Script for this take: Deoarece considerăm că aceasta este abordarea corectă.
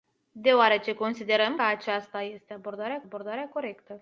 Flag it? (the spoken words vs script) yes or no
yes